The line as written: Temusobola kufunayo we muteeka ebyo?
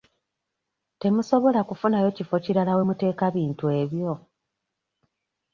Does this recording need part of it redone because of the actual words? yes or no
yes